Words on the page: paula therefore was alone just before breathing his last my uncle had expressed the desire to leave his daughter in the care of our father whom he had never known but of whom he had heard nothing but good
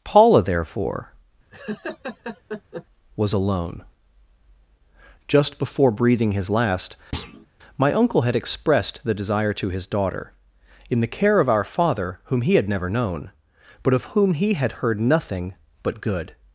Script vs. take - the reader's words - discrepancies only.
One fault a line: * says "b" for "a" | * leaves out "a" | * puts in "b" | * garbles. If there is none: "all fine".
* leaves out "leave"